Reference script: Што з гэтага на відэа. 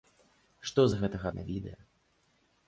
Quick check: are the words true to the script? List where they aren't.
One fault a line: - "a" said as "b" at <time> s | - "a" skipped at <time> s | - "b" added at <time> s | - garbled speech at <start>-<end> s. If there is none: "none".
none